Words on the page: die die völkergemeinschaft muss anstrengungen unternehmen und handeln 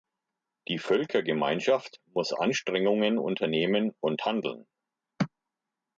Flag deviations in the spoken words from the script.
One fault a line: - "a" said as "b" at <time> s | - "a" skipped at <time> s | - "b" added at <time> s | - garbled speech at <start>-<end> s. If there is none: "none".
- "die" skipped at 0.8 s